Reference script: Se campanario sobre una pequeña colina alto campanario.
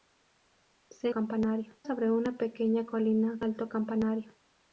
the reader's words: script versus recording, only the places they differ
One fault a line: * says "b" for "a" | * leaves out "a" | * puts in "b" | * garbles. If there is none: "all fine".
all fine